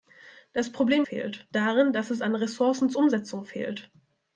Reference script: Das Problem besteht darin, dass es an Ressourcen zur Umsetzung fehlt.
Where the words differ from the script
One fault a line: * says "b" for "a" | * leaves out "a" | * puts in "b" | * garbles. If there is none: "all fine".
* says "fehlt" for "besteht"